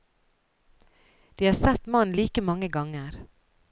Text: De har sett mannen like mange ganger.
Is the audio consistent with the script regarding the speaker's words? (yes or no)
yes